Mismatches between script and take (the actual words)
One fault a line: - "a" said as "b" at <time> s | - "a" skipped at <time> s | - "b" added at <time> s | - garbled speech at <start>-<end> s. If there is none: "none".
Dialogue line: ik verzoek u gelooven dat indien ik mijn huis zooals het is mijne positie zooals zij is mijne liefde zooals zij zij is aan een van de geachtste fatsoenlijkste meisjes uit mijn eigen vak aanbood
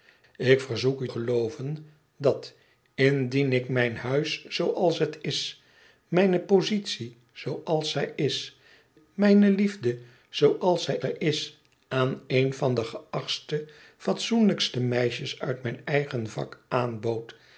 none